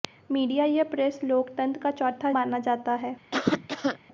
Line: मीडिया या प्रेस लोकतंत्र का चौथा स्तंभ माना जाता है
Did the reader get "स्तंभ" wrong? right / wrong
wrong